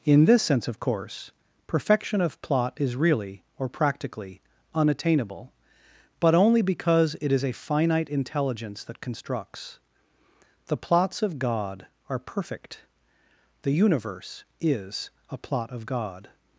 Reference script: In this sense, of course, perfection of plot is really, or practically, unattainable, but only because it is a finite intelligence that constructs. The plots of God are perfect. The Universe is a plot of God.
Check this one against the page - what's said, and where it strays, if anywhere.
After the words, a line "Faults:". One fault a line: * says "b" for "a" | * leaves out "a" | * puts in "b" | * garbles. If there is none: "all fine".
In this sense, of course, perfection of plot is really, or practically, unattainable, but only because it is a finite intelligence that constructs. The plots of God are perfect. The Universe is a plot of God.
Faults:
all fine